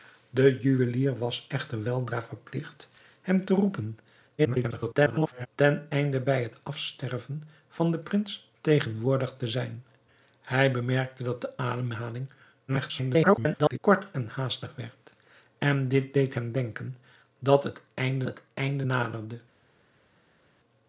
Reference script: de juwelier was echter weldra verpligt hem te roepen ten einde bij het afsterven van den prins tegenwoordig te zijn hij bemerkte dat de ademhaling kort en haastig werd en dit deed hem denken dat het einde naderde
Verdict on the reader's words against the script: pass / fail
fail